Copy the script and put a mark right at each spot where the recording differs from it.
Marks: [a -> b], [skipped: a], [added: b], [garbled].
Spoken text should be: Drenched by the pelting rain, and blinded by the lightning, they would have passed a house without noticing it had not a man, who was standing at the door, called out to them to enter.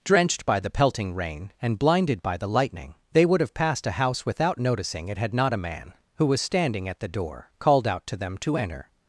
Drenched by the pelting rain, and blinded by the lightning, they would have passed a house without noticing it had not a man, who was standing at the door, called out to them to enter.